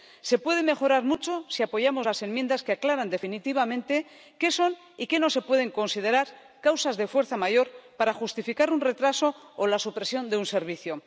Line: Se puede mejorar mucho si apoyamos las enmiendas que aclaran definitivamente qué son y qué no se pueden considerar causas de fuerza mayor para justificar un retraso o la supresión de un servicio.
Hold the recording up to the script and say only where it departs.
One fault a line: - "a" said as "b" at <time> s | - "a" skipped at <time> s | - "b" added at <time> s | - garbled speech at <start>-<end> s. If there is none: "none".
none